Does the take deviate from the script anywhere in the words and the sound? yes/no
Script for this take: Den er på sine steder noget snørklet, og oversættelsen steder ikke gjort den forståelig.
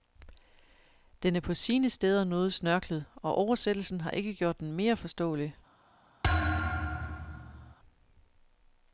yes